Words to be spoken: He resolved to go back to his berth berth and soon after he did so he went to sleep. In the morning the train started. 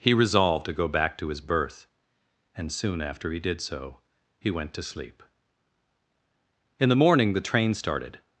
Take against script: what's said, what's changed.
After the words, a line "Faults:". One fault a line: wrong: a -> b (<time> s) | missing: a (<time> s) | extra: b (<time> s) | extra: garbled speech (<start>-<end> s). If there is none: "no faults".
He resolved to go back to his berth and soon after he did so he went to sleep. In the morning the train started.
Faults:
missing: berth (1.9 s)